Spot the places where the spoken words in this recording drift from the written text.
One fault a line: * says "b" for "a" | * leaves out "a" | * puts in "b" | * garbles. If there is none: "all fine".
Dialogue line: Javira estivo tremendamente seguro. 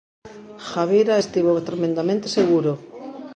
all fine